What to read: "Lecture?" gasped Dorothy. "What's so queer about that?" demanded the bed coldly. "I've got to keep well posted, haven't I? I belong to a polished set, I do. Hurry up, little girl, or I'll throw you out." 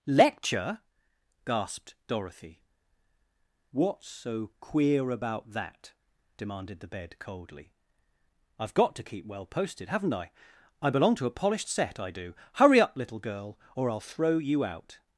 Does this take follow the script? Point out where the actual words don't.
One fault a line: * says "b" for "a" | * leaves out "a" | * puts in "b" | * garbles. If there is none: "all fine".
all fine